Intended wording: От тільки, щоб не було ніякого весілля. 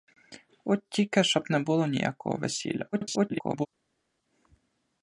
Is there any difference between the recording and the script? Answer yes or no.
yes